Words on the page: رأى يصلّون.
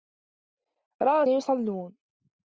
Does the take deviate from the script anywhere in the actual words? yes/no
no